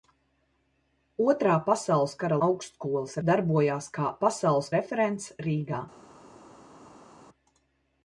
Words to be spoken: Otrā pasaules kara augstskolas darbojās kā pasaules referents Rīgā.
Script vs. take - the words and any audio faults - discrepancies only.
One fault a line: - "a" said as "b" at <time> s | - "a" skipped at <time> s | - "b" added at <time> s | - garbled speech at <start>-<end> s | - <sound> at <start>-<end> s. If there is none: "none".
none